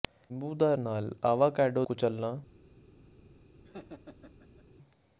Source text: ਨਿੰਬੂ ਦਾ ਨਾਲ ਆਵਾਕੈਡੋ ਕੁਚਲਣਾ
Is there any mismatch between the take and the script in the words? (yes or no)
no